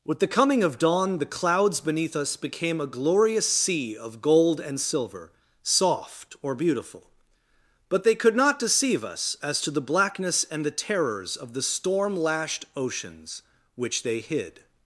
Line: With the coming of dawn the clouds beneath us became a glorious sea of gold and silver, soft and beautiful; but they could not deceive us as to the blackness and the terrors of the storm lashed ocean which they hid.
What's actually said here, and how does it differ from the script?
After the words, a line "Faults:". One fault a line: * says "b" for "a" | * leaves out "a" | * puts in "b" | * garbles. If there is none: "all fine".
With the coming of dawn the clouds beneath us became a glorious sea of gold and silver, soft or beautiful; but they could not deceive us as to the blackness and the terrors of the storm lashed oceans which they hid.
Faults:
* says "or" for "and"
* says "oceans" for "ocean"